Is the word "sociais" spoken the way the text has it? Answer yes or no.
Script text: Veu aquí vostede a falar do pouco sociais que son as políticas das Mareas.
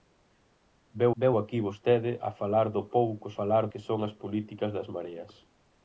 no